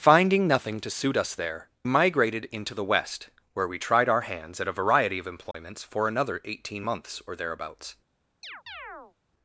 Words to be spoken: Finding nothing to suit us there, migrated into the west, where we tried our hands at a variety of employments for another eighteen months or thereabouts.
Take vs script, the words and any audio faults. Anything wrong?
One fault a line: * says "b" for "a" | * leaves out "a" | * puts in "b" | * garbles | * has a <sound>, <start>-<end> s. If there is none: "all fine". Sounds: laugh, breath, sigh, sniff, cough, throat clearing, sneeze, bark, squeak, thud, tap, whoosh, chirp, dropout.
* has a dropout, 5.5-5.5 s
* has a chirp, 8.4-9.1 s